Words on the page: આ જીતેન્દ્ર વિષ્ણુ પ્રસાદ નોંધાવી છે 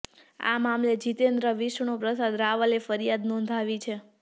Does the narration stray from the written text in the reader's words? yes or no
yes